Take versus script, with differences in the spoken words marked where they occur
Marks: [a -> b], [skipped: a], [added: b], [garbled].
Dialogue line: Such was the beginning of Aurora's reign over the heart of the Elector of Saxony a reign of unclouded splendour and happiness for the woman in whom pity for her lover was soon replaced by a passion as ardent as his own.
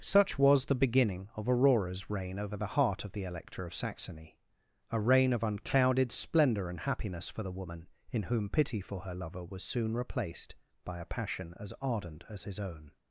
Such was the beginning of Aurora's reign over the heart of the Elector of Saxony a reign of unclouded splendour and happiness for the woman in whom pity for her lover was soon replaced by a passion as ardent as his own.